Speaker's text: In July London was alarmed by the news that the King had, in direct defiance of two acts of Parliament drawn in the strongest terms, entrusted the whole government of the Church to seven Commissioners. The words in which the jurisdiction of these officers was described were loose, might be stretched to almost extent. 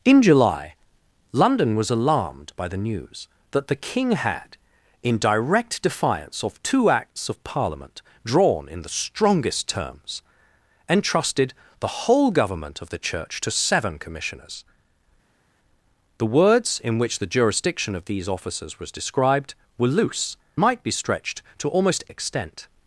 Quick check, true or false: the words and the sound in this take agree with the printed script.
true